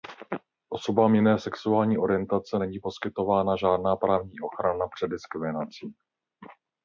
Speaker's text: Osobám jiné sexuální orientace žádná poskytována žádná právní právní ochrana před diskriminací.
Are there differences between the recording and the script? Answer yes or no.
yes